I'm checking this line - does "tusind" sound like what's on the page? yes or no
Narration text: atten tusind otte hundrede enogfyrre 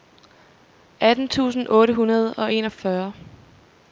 yes